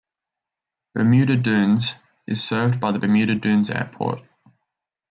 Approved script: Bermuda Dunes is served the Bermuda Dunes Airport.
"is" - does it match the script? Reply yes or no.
yes